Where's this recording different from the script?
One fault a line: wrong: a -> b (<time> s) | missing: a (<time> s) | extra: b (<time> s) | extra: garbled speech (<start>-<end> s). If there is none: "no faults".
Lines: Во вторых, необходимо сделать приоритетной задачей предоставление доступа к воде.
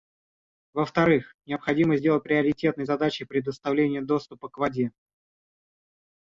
no faults